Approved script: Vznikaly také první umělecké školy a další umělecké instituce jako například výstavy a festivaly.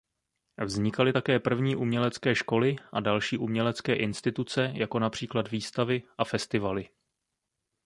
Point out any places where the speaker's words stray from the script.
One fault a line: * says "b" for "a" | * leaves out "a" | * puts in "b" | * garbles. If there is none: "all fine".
all fine